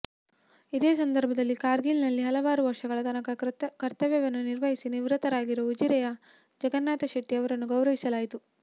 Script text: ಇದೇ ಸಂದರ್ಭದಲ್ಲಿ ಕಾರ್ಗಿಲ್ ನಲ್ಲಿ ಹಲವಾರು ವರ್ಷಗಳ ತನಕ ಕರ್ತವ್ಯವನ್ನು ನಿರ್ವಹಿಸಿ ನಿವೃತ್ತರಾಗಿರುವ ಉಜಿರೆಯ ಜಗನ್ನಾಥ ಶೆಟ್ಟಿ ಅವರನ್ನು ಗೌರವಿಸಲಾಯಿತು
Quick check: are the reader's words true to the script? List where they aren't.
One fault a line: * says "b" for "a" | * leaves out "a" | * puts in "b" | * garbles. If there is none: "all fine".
all fine